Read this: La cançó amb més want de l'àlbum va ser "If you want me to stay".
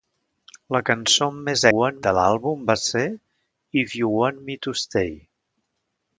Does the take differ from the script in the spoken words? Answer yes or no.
no